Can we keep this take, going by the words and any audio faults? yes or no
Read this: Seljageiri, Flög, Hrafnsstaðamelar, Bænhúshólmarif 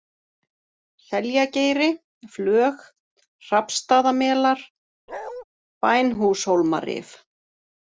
no